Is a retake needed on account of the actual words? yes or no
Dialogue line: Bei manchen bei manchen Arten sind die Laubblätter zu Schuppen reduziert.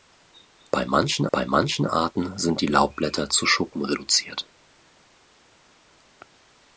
no